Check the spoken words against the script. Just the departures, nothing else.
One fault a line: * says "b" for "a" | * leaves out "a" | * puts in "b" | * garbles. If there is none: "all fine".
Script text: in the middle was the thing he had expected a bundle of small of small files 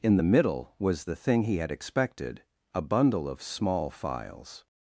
* leaves out "of small"